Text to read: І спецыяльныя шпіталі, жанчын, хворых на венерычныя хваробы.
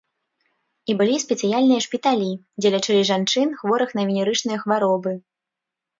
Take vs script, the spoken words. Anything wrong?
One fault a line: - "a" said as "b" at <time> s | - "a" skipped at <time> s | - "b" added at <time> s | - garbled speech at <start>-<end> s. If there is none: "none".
- "былі" added at 1.0 s
- "дзе лячылі" added at 2.6 s